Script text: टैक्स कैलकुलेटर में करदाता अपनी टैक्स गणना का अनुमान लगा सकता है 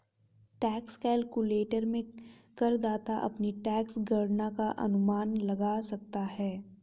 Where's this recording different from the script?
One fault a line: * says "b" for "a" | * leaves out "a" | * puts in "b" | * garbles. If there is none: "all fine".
all fine